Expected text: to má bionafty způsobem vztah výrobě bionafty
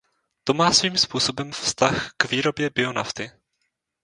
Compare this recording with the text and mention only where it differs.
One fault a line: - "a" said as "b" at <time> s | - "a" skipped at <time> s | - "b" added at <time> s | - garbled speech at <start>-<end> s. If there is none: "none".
- "bionafty" said as "svým" at 0.7 s
- "k" added at 2.2 s